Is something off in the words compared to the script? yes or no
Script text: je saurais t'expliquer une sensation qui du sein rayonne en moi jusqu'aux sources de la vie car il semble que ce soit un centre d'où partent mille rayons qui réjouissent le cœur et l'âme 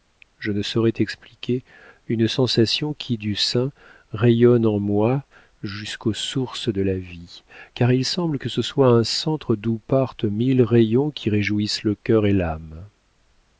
yes